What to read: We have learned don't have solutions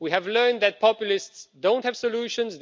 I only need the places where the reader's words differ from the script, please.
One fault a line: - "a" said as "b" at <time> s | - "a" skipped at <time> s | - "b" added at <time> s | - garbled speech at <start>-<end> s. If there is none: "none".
- "that populists" added at 0.6 s